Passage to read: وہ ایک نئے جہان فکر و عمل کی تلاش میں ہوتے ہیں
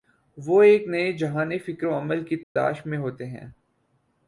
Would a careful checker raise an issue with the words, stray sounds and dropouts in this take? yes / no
yes